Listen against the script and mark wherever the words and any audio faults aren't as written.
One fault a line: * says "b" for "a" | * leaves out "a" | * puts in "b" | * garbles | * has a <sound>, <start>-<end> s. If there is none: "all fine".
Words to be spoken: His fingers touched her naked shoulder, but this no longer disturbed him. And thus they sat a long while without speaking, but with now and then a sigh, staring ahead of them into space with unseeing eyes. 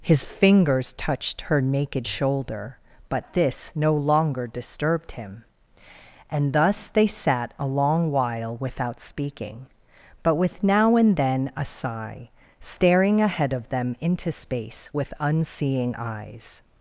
all fine